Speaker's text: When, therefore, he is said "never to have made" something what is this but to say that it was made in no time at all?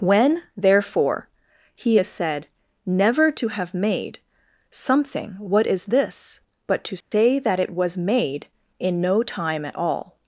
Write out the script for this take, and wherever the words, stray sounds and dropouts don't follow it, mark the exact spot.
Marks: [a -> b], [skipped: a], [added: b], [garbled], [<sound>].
When, therefore, he is said "never to have made" something what is this but to say [dropout] that it was made in no time at all?